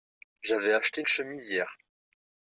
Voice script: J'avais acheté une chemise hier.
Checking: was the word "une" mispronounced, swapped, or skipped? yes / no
yes